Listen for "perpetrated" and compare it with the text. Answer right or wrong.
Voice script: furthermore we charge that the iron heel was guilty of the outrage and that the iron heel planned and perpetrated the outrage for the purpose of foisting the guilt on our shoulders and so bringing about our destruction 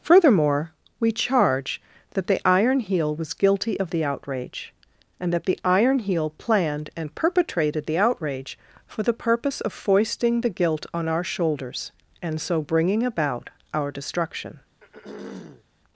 right